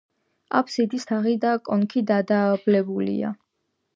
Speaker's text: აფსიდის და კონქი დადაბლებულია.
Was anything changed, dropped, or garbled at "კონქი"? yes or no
no